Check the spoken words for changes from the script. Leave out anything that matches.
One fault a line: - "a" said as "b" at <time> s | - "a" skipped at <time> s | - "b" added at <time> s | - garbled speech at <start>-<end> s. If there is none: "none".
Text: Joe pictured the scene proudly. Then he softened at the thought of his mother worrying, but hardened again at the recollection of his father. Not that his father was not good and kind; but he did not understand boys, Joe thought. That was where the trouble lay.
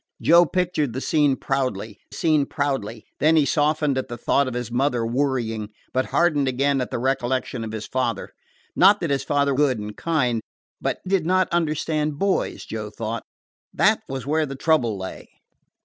- "scene proudly" added at 2.1 s
- "was not" skipped at 9.5 s
- "he" skipped at 11.0 s